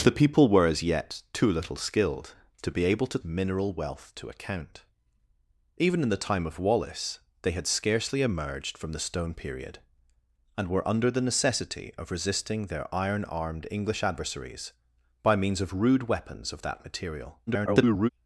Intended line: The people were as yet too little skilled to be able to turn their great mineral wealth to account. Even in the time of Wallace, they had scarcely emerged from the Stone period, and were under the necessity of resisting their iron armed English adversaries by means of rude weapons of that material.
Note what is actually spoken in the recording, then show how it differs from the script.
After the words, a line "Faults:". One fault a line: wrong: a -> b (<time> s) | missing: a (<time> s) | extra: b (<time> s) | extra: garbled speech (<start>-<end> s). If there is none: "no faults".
The people were as yet too little skilled to be able to mineral wealth to account. Even in the time of Wallace, they had scarcely emerged from the Stone period, and were under the necessity of resisting their iron armed English adversaries by means of rude weapons of that material. [garbled]
Faults:
missing: turn their great (3.2 s)
extra: garbled speech (17.5-18.1 s)